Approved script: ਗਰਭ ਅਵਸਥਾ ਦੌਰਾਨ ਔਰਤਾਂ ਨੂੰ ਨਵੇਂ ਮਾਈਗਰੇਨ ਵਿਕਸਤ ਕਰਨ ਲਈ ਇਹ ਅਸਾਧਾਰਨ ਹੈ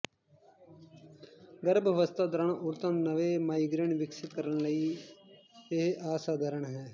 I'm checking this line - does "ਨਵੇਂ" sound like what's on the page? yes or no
yes